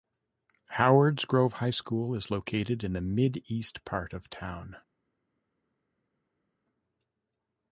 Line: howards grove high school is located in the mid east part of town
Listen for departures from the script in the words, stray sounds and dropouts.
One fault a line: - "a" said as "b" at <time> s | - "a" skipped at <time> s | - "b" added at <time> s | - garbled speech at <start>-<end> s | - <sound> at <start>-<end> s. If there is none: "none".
none